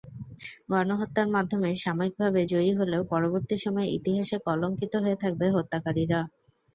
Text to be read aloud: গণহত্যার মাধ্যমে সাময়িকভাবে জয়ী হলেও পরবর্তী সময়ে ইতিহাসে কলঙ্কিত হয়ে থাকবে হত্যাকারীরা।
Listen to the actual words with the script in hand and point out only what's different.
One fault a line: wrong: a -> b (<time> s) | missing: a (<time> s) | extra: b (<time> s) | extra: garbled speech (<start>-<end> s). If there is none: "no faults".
no faults